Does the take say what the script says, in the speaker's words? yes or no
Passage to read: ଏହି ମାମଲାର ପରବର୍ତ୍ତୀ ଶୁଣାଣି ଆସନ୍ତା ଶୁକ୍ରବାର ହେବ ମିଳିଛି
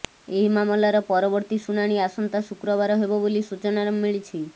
no